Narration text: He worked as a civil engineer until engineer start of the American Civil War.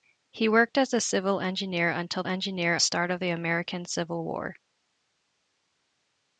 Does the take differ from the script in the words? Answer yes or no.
no